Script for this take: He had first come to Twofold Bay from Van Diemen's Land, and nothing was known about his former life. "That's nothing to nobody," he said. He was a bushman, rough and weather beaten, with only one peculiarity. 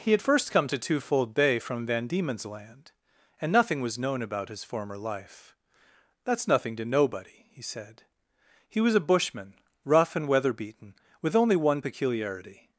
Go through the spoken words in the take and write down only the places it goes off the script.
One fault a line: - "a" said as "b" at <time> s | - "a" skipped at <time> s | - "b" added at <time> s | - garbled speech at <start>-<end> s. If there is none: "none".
none